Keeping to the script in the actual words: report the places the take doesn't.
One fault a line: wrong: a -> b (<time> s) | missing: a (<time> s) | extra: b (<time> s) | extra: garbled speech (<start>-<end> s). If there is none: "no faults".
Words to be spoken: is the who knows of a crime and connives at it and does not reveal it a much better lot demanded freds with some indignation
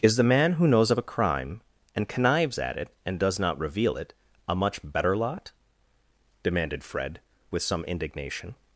extra: man (0.2 s)
wrong: freds -> fred (6.8 s)